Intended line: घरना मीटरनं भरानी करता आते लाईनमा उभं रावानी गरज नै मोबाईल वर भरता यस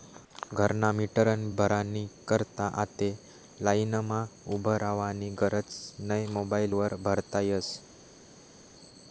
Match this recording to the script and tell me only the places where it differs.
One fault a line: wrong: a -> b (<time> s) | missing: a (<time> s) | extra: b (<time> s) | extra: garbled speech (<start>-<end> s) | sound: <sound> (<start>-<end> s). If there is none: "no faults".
no faults